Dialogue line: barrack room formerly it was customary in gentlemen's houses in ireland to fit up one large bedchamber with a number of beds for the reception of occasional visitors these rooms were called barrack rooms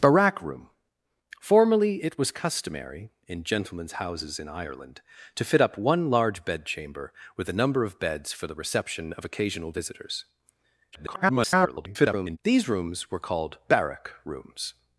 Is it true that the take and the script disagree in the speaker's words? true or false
true